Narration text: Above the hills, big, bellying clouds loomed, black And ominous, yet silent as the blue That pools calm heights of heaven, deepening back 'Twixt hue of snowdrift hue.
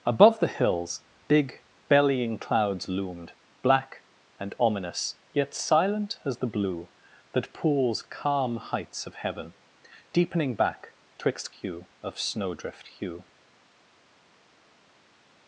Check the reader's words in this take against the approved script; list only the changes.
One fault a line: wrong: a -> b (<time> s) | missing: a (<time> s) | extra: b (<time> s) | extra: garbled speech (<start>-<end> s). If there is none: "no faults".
no faults